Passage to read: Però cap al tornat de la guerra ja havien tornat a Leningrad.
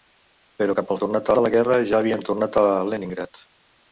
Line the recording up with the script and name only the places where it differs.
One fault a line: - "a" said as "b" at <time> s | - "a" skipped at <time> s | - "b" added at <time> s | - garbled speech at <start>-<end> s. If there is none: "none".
none